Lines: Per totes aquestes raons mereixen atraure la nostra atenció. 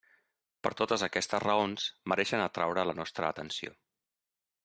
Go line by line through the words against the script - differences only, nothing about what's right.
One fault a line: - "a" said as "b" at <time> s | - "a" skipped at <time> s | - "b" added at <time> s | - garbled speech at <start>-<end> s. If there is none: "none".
none